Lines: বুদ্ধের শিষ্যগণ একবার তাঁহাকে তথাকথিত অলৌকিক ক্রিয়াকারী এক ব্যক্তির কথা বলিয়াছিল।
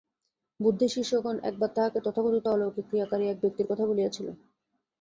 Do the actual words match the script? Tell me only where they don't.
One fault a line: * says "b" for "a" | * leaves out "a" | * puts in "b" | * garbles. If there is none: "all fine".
all fine